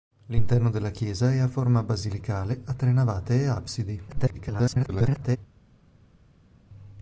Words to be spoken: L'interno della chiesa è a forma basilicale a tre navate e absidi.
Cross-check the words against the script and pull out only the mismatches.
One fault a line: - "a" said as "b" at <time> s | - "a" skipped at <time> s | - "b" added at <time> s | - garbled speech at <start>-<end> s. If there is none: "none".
- garbled speech at 4.1-5.4 s